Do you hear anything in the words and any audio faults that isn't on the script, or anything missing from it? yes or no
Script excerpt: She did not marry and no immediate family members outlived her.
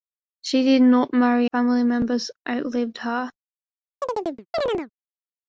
yes